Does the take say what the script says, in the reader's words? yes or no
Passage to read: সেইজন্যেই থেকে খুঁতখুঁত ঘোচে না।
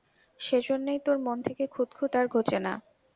no